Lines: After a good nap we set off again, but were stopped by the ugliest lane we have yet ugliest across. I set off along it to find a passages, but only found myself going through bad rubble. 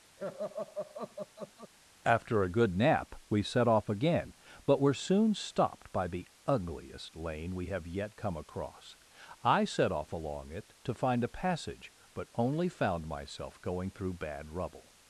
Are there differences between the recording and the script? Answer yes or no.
yes